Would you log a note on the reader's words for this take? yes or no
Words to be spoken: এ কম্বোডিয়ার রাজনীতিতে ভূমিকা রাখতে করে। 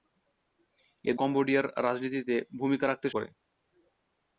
no